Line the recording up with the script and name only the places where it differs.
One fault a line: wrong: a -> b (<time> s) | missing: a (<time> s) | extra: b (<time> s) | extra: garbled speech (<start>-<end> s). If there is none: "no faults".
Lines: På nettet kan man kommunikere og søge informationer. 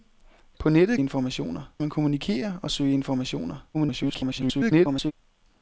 wrong: kan -> informationer (1.0 s)
extra: garbled speech (3.7-5.1 s)